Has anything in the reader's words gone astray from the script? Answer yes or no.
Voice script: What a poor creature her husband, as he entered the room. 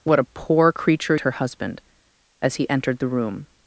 no